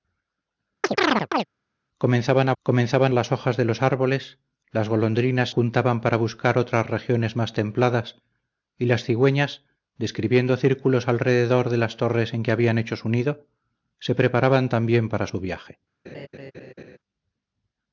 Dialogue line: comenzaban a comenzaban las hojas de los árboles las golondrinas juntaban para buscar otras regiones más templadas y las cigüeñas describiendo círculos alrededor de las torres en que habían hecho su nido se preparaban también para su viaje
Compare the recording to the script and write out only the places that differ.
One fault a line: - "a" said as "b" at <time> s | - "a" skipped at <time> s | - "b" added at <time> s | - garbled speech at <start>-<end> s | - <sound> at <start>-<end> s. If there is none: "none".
- chirp at 0.8-1.5 s
- laugh at 16.0-17.0 s